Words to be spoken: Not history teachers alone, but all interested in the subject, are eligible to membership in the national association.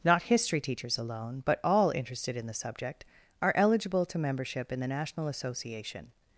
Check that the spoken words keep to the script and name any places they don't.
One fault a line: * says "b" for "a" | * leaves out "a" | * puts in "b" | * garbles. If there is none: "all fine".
all fine